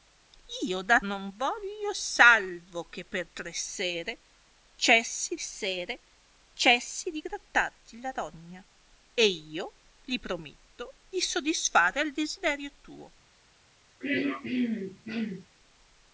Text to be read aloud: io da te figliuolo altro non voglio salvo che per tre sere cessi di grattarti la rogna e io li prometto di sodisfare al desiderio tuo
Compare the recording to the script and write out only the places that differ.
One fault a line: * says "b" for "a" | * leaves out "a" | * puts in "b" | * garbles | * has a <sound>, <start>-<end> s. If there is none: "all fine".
* leaves out "te figliuolo altro"
* puts in "sere cessi"
* has a throat clearing, 14.0-15.5 s